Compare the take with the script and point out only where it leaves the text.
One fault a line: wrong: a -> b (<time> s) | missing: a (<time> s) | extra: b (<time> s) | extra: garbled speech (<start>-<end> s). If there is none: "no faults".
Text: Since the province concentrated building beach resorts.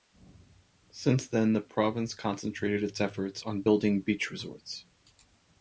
extra: then (1.3 s)
extra: its efforts on (2.8 s)